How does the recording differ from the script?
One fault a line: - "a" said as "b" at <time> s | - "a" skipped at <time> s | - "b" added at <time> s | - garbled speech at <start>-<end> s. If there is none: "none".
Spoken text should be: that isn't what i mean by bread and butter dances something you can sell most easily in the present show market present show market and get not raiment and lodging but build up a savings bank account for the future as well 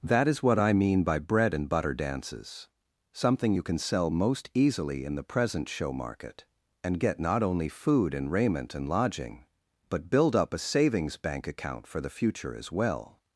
- "isn't" said as "is" at 0.3 s
- "present show market and get not" said as "and get not only food and" at 6.8 s